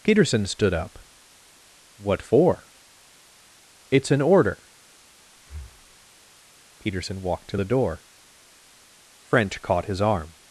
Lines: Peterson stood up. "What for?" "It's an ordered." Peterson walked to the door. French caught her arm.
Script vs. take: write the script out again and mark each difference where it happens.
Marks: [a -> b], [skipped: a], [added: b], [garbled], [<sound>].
Peterson stood up. "What for?" "It's an [ordered." -> order] [breath] Peterson walked to the door. French caught [her -> his] arm.